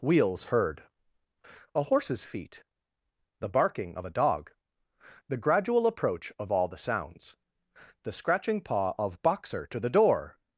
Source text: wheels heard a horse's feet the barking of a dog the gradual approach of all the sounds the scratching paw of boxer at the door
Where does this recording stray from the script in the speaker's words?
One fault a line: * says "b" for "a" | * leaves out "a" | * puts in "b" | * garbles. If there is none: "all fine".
* says "to" for "at"